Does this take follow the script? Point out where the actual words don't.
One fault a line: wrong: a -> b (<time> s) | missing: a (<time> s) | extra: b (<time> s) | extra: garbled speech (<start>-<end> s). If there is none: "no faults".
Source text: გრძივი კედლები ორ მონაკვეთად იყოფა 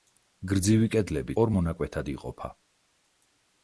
no faults